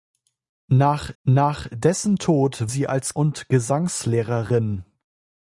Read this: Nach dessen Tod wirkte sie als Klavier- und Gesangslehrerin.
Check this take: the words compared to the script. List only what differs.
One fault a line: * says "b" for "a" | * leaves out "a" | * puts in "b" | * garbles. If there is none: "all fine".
* puts in "nach"
* leaves out "wirkte"
* leaves out "Klavier"